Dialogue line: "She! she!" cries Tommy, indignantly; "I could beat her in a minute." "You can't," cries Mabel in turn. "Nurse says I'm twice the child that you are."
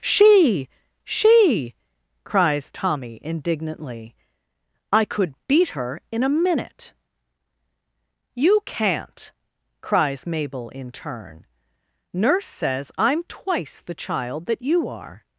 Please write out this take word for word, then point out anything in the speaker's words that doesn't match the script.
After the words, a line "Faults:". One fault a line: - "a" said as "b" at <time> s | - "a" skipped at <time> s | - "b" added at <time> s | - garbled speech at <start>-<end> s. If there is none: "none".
"She! she!" cries Tommy, indignantly; "I could beat her in a minute." "You can't," cries Mabel in turn. "Nurse says I'm twice the child that you are."
Faults:
none